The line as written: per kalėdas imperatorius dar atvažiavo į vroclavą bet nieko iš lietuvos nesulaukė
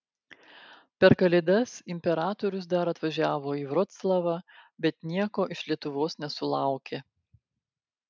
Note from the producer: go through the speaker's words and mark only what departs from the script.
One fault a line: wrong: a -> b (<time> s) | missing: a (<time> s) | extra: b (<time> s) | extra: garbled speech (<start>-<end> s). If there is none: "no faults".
no faults